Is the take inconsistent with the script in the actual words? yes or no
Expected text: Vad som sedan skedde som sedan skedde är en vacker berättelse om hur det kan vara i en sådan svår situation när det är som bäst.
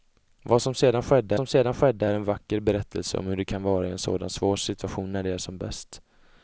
no